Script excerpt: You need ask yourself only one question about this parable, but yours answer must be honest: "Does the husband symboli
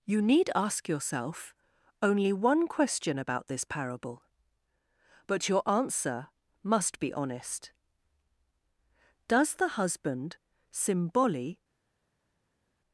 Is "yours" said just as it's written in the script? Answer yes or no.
no